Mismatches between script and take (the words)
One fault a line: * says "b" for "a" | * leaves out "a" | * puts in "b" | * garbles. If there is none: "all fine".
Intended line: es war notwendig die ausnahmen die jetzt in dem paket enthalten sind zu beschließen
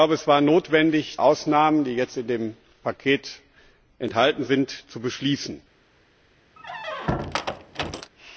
* leaves out "die"